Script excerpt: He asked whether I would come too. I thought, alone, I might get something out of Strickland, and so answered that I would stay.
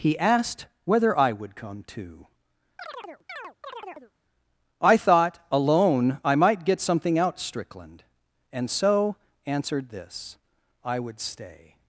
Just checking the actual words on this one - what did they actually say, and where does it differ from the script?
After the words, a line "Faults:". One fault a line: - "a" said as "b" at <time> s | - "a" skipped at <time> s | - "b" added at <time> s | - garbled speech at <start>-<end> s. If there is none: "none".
He asked whether I would come too. I thought, alone, I might get something out Strickland, and so answered this I would stay.
Faults:
- "of" skipped at 7.4 s
- "that" said as "this" at 9.9 s